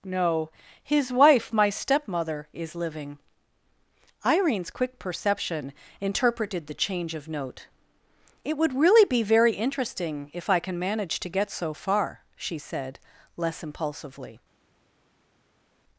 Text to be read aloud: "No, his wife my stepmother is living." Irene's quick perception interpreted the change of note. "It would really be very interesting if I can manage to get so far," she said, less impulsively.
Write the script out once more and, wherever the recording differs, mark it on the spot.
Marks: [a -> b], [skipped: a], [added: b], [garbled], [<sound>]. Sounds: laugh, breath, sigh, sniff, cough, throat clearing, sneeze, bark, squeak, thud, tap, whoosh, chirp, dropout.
"No, his wife my stepmother is living." Irene's quick perception interpreted the change of note. "It would really be very interesting if I can manage to get so far," she said, less impulsively.